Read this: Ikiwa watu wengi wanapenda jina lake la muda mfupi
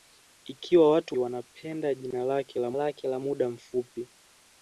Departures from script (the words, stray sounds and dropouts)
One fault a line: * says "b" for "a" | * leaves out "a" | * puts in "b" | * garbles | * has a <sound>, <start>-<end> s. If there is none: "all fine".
* leaves out "wengi"
* puts in "lake la"